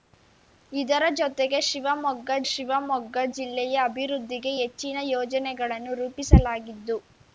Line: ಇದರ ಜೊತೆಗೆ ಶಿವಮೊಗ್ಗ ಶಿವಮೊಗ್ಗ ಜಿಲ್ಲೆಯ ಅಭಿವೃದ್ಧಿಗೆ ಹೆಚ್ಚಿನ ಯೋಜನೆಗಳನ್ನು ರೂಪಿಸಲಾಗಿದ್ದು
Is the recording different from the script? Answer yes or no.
no